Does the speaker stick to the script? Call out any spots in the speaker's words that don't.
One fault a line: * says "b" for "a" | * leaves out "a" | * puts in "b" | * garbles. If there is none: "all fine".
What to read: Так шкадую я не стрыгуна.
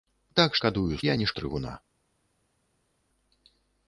all fine